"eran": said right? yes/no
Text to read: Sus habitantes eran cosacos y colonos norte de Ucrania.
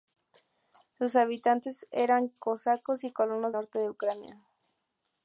yes